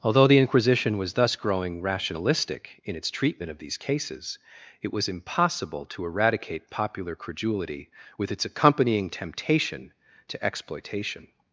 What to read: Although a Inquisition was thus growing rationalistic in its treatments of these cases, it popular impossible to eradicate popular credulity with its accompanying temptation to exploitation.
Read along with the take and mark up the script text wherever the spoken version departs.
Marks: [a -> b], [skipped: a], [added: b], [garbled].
Although [a -> the] Inquisition was thus growing rationalistic in its [treatments -> treatment] of these cases, it [popular -> was] impossible to eradicate popular credulity with its accompanying temptation to exploitation.